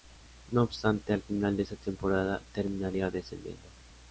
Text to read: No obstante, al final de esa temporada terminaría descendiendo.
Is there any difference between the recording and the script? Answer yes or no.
no